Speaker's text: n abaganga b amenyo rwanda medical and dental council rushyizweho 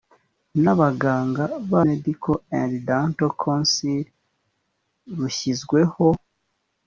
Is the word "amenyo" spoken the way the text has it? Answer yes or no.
no